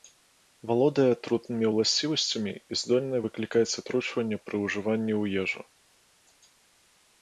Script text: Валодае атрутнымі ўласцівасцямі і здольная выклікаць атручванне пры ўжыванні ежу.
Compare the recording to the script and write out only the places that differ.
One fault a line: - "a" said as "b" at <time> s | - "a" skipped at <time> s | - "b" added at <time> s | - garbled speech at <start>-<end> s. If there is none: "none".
- "ў" added at 5.2 s